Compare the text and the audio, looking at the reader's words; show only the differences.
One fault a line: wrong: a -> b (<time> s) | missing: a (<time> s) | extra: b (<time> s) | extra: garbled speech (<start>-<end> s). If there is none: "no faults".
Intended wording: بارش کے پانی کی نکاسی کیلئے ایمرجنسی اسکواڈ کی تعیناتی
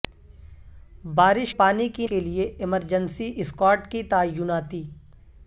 missing: کے (1.5 s)
missing: نکاسی (2.1 s)